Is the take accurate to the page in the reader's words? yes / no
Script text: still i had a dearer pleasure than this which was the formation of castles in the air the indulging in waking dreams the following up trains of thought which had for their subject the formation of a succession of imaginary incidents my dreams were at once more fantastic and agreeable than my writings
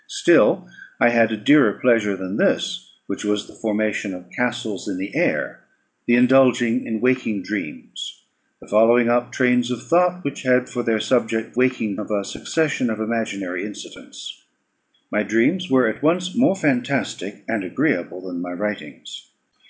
no